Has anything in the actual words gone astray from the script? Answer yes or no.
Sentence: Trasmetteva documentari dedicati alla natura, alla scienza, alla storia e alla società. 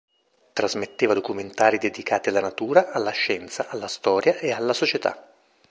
no